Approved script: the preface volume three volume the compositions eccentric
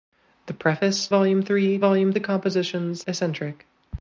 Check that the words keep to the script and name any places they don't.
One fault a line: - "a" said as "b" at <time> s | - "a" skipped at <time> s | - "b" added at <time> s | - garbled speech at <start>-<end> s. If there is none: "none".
none